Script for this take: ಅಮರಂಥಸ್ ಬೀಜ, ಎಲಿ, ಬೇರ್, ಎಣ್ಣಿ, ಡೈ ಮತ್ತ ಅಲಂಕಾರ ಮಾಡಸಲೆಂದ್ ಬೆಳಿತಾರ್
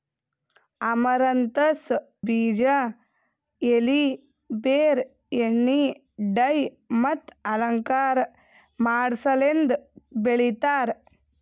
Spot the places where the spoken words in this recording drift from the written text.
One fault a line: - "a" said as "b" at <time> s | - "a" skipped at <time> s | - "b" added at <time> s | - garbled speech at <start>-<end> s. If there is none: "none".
none